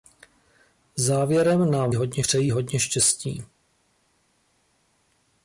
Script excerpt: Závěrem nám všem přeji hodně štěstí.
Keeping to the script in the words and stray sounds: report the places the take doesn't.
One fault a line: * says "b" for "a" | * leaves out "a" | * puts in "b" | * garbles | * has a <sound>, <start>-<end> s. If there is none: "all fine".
* says "hodně" for "všem"